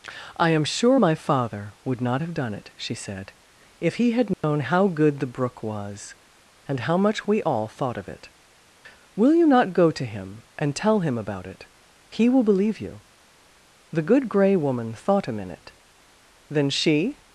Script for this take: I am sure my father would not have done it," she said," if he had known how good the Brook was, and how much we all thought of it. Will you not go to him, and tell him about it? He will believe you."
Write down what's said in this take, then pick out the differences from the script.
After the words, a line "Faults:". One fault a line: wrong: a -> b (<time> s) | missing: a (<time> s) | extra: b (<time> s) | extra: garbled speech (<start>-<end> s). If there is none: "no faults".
I am sure my father would not have done it," she said," if he had known how good the Brook was, and how much we all thought of it. Will you not go to him, and tell him about it? He will believe you." The Good Gray Woman thought a minute. Then she
Faults:
extra: The Good Gray Woman thought a minute Then she (13.9 s)